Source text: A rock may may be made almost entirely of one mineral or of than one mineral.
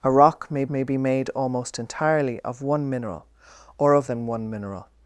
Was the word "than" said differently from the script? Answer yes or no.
no